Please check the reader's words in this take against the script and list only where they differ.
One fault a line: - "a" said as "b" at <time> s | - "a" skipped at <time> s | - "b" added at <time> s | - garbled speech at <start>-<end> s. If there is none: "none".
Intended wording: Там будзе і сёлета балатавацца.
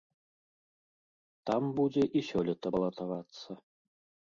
none